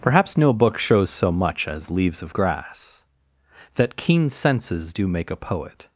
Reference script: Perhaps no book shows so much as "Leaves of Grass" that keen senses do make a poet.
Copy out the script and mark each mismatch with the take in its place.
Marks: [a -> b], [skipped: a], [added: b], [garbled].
Perhaps no book shows so much as "Leaves of Grass" that keen senses do make a poet.